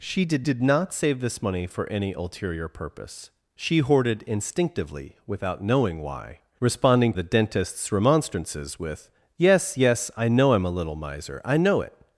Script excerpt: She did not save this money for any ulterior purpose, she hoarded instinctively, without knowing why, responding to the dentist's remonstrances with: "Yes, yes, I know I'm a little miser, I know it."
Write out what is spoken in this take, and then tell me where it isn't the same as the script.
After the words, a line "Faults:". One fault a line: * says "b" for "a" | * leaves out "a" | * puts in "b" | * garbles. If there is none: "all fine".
She did did not save this money for any ulterior purpose, she hoarded instinctively, without knowing why, responding the dentist's remonstrances with: "Yes, yes, I know I'm a little miser, I know it."
Faults:
* puts in "did"
* leaves out "to"